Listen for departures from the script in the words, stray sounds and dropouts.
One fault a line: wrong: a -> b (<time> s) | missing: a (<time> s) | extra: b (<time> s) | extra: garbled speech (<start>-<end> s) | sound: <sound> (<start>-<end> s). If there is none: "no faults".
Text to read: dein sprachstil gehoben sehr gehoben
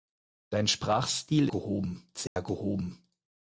sound: dropout (2.3-2.4 s)